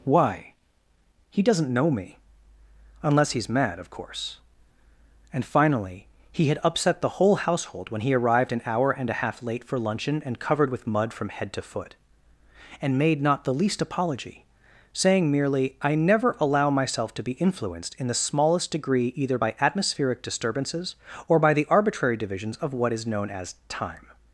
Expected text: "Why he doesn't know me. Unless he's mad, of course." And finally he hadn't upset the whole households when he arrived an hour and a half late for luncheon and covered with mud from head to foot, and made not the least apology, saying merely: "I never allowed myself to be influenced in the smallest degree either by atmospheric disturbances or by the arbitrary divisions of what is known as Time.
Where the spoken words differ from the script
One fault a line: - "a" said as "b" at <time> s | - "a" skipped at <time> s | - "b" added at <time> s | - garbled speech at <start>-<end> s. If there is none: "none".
- "hadn't" said as "had" at 6.5 s
- "households" said as "household" at 7.4 s
- "allowed" said as "allow" at 16.4 s